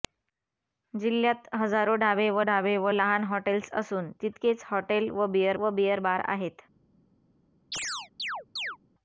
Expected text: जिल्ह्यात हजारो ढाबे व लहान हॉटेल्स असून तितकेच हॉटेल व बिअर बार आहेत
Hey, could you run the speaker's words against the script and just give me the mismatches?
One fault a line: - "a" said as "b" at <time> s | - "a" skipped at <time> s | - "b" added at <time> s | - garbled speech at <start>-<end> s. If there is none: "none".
- "ढाबे व" added at 2.4 s
- "व बिअर" added at 5.5 s